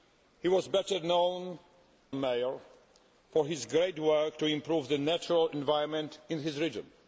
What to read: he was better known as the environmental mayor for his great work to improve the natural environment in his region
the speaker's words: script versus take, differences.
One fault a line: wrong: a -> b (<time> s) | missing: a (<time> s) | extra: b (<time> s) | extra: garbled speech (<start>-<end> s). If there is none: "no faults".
missing: as the environmental (1.6 s)